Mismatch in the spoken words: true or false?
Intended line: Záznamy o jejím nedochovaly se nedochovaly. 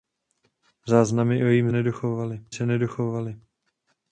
false